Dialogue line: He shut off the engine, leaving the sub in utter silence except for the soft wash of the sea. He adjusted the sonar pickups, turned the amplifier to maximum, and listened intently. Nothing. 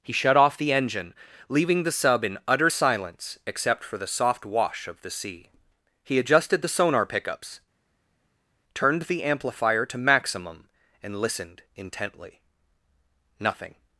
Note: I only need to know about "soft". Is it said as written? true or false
true